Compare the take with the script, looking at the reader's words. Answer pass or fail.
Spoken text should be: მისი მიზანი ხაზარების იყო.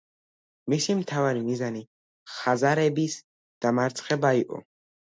fail